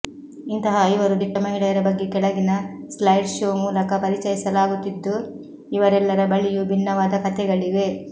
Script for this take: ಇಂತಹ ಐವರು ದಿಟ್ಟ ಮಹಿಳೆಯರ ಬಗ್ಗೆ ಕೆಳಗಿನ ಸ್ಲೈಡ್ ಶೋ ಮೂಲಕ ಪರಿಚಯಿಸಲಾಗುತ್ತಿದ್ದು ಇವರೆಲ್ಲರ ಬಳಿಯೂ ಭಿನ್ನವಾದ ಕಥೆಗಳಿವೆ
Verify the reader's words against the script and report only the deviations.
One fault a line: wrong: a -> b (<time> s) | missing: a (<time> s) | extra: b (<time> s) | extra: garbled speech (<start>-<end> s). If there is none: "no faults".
no faults